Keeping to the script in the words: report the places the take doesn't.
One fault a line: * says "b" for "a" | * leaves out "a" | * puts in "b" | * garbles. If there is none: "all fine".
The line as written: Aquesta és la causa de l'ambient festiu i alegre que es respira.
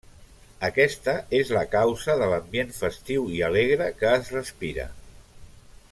all fine